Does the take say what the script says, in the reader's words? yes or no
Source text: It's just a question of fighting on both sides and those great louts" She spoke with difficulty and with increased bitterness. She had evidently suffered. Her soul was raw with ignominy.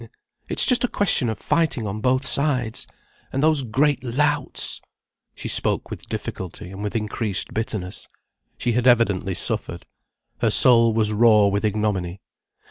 yes